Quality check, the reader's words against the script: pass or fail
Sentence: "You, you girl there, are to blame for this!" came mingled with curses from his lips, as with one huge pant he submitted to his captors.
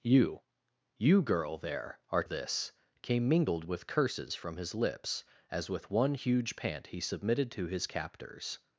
fail